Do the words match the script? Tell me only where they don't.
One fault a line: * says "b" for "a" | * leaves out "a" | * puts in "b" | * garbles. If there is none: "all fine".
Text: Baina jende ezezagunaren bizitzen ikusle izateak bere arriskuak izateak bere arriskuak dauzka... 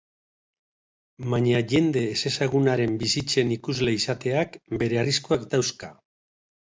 * leaves out "izateak bere arriskuak"